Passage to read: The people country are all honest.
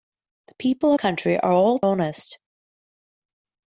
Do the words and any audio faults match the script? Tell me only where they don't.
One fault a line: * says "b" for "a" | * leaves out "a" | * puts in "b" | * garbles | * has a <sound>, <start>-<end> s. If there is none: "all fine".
all fine